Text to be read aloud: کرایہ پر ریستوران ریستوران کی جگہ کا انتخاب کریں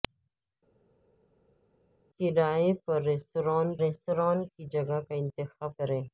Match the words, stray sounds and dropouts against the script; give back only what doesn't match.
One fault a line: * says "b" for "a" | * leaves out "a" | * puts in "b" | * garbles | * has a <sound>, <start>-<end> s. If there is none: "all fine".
all fine